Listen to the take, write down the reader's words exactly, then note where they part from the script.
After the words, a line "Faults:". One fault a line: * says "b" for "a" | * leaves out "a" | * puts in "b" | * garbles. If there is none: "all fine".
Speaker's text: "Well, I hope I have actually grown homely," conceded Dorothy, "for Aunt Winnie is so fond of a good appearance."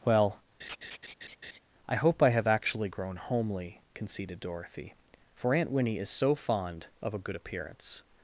"Well, I hope I have actually grown homely," conceded Dorothy, "for Aunt Winnie is so fond of a good appearance."
Faults:
all fine